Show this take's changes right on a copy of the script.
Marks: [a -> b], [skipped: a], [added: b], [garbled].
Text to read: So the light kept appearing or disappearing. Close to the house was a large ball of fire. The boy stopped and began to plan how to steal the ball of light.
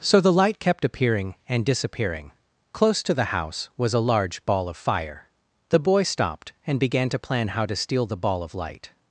So the light kept appearing [or -> and] disappearing. Close to the house was a large ball of fire. The boy stopped and began to plan how to steal the ball of light.